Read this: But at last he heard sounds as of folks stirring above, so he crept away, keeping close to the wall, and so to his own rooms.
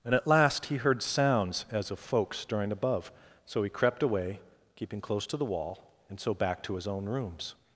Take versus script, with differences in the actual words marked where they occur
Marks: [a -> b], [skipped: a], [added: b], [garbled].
[But -> And] at last he heard sounds as of folks stirring above, so he crept away, keeping close to the wall, and so [added: back] to his own rooms.